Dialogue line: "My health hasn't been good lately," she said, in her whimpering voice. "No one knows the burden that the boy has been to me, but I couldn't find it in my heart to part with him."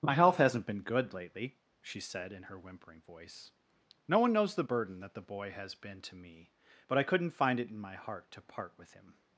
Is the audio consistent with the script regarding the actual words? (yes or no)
yes